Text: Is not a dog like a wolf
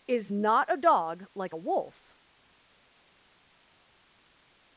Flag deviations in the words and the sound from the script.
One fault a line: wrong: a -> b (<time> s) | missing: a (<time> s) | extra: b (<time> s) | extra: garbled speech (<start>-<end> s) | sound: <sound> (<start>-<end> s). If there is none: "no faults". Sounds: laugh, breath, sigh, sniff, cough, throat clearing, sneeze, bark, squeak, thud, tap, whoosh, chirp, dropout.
no faults